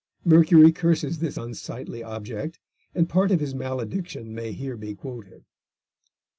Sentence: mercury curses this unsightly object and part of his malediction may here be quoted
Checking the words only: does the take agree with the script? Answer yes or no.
yes